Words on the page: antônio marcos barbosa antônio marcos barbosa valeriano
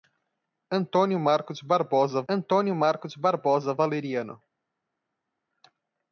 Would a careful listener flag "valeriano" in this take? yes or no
no